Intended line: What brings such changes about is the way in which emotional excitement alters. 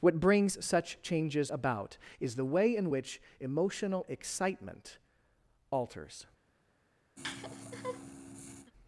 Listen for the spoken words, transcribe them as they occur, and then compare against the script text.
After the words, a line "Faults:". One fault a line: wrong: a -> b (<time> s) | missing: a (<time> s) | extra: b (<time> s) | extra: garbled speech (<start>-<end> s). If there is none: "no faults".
What brings such changes about is the way in which emotional excitement alters.
Faults:
no faults